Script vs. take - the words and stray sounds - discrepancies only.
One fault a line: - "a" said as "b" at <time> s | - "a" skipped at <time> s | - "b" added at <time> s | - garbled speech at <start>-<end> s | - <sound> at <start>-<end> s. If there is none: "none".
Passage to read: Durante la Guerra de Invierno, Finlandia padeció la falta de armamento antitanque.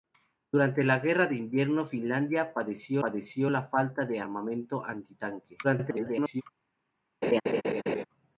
- "padeció" added at 3.0 s
- garbled speech at 5.6-6.4 s
- laugh at 7.2-8.0 s